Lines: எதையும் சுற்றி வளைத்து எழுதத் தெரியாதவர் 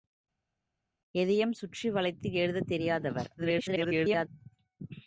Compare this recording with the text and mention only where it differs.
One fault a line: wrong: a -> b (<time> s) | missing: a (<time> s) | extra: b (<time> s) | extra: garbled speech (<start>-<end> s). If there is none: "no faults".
extra: garbled speech (3.4-4.3 s)